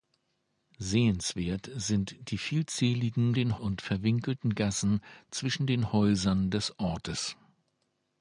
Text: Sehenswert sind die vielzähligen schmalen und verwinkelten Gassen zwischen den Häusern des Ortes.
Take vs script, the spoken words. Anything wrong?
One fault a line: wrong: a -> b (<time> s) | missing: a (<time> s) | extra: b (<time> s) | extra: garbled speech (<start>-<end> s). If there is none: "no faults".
wrong: schmalen -> den (3.3 s)